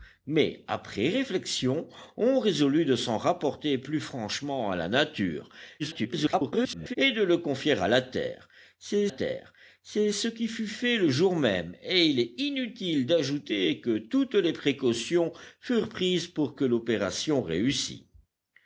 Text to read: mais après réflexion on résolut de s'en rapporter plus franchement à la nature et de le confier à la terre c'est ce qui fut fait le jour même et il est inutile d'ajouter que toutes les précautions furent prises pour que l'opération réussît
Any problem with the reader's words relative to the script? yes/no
yes